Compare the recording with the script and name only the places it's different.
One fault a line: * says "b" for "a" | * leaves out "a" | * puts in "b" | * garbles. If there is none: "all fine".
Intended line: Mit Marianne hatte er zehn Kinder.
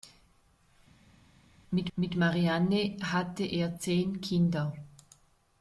* puts in "mit"